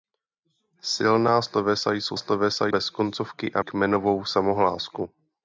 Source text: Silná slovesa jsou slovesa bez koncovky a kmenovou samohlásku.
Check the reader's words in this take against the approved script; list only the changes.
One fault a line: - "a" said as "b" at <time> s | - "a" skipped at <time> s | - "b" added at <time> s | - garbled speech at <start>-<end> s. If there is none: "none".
none